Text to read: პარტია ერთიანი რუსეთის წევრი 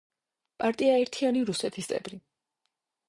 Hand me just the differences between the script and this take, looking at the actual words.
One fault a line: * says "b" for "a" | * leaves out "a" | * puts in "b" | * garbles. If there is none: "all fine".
all fine